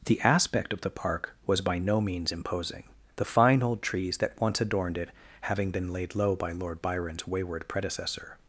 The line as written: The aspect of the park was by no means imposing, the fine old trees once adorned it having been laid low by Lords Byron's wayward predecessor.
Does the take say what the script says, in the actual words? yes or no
no